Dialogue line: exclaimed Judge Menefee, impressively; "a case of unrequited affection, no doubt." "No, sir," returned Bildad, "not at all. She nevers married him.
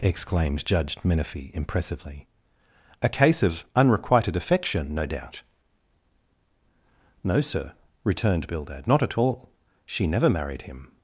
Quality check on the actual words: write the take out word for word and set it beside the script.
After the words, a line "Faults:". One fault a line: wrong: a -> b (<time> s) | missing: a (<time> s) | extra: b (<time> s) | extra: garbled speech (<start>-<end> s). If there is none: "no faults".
exclaimed Judge Menefee, impressively; "a case of unrequited affection, no doubt." "No, sir," returned Bildad, "not at all. She never married him.
Faults:
wrong: nevers -> never (10.1 s)